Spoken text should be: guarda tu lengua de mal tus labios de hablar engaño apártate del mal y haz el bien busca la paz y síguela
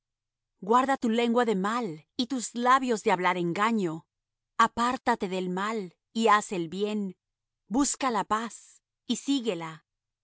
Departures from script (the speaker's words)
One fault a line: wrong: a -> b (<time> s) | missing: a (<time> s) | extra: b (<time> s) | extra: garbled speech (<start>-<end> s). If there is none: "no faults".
extra: y (2.2 s)